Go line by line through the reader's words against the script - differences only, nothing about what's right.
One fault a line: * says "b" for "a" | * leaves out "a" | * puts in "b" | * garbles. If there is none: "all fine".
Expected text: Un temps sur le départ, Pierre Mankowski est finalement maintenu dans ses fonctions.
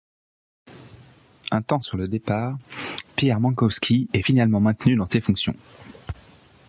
all fine